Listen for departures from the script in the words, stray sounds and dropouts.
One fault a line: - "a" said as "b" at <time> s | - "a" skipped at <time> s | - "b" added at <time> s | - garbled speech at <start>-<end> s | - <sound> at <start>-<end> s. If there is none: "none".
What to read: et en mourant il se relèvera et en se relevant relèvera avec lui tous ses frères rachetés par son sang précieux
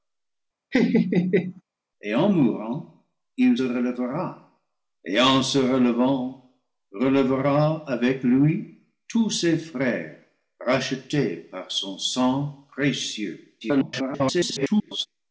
- laugh at 0.7-1.6 s
- "se" skipped at 3.6 s
- garbled speech at 13.6-15.1 s